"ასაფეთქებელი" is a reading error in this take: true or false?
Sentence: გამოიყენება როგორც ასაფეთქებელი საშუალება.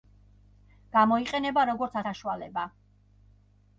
true